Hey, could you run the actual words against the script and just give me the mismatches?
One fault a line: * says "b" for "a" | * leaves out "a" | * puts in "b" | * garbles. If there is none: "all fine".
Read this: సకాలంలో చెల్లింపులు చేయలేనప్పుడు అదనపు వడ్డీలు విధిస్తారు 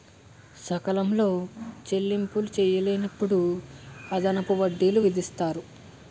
all fine